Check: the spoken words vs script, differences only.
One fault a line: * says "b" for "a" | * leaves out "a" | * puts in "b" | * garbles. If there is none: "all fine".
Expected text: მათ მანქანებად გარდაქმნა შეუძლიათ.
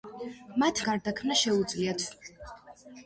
* leaves out "მანქანებად"